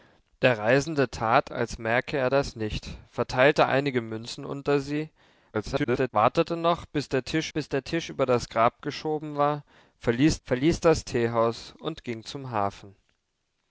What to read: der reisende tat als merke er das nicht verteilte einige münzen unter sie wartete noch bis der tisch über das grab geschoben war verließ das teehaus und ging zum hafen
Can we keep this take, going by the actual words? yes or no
no